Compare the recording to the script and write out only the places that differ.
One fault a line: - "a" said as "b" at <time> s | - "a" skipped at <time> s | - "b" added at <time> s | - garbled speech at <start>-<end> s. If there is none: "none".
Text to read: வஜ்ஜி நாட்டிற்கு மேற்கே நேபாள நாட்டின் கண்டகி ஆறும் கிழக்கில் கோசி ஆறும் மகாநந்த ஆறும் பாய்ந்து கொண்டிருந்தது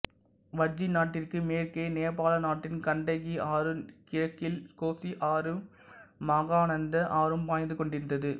none